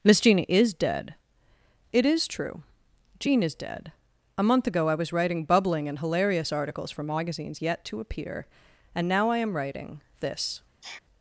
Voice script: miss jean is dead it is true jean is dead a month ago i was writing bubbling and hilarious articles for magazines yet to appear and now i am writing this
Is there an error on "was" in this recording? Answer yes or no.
no